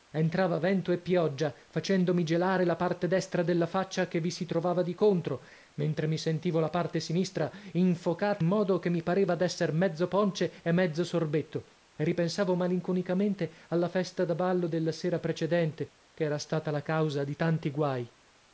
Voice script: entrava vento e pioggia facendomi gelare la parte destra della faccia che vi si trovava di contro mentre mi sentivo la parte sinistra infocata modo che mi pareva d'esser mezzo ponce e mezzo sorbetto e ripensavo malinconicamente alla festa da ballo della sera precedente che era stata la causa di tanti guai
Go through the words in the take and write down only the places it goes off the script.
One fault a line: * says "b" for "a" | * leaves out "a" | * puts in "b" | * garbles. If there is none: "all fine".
all fine